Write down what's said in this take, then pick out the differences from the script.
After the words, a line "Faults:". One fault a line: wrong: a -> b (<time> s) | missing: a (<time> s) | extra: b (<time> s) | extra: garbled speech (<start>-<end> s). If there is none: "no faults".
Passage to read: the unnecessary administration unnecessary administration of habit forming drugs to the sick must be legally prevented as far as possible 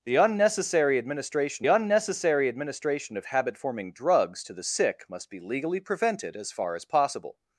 the unnecessary administration unnecessary administration of habit forming drugs to the sick must be legally prevented as far as possible
Faults:
no faults